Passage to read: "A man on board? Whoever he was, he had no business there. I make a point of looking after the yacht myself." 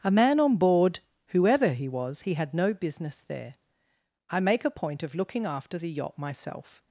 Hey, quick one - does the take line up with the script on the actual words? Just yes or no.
yes